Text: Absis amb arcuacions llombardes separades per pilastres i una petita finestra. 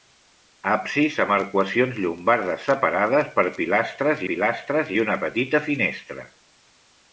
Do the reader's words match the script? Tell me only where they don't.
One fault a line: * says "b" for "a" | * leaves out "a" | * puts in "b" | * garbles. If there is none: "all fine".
* puts in "pilastres"